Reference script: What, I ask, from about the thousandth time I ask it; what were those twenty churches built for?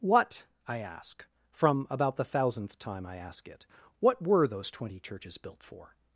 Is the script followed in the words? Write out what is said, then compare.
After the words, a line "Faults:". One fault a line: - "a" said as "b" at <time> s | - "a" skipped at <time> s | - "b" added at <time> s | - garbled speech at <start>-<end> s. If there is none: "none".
What, I ask, from about the thousandth time I ask it; what were those twenty churches built for?
Faults:
none